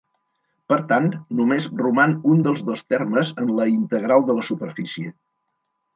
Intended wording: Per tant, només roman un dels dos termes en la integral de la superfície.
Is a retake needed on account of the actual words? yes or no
no